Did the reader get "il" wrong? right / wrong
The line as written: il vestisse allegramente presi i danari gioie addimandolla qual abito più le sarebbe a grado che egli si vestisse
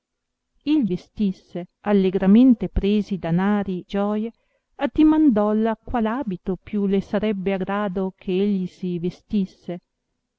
right